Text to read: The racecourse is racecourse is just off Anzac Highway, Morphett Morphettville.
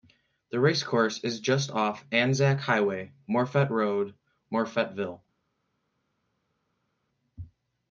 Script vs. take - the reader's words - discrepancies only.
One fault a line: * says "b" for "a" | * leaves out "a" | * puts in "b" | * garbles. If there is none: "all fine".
* leaves out "racecourse is"
* puts in "Road"